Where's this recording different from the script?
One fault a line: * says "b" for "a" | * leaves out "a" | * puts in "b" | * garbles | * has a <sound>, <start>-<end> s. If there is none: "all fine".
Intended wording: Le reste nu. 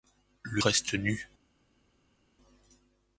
all fine